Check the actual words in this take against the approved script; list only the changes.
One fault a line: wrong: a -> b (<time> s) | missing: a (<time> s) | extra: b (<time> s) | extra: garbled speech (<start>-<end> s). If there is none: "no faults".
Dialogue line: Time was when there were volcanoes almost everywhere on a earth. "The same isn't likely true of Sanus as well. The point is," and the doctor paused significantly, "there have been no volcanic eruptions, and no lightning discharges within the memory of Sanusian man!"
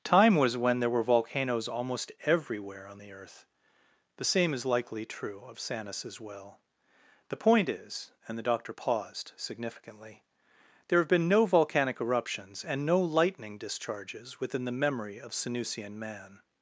wrong: a -> the (3.0 s)
wrong: isn't -> is (4.5 s)